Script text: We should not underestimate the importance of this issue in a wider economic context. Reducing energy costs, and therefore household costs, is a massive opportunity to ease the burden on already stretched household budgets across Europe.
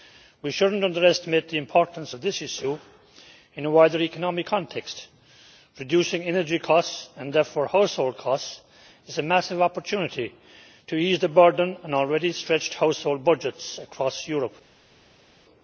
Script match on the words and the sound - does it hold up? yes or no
yes